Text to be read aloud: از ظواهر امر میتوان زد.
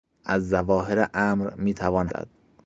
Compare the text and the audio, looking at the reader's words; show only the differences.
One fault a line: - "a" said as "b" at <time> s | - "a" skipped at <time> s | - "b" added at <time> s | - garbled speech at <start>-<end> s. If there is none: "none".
none